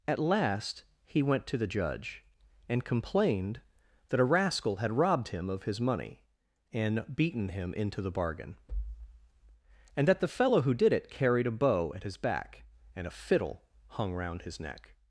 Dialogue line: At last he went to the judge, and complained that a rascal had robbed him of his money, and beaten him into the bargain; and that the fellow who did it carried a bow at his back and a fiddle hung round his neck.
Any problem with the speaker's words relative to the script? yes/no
no